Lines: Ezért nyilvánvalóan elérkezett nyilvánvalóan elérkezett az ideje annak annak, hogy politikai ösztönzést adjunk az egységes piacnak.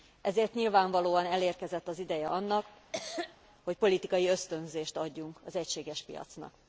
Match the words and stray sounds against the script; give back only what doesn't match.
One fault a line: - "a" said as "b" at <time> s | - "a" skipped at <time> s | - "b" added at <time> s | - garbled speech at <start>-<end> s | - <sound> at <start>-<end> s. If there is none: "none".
- "nyilvánvalóan elérkezett" skipped at 1.9 s
- "annak" skipped at 2.6 s
- cough at 2.9-3.4 s